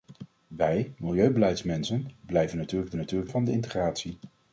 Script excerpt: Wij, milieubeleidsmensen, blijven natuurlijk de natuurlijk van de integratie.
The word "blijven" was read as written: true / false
true